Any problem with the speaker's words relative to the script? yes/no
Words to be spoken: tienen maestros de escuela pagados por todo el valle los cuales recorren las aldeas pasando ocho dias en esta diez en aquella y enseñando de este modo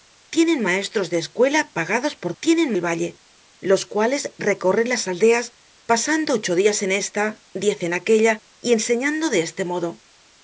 yes